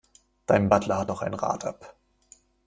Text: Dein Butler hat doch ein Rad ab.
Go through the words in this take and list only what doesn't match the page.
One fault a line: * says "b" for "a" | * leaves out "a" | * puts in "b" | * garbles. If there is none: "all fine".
all fine